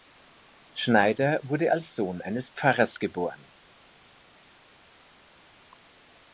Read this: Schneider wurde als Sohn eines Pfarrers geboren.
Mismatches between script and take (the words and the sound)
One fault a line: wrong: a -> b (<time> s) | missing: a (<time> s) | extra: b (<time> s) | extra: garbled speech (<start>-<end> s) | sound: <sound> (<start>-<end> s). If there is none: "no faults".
no faults